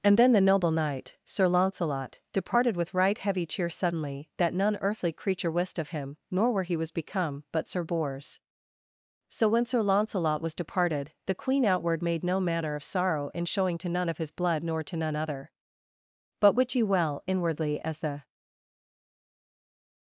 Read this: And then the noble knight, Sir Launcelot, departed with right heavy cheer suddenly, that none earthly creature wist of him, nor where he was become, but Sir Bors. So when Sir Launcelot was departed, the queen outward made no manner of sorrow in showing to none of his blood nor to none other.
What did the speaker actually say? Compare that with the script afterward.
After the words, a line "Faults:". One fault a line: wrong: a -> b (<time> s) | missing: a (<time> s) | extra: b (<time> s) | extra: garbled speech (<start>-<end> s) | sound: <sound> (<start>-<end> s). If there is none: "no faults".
And then the noble knight, Sir Launcelot, departed with right heavy cheer suddenly, that none earthly creature wist of him, nor where he was become, but Sir Bors. So when Sir Launcelot was departed, the queen outward made no manner of sorrow in showing to none of his blood nor to none other. But wit ye well, inwardly, as the
Faults:
extra: But wit ye well inwardly as the (16.4 s)